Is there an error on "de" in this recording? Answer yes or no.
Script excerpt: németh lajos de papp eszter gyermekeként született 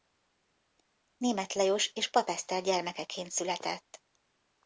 yes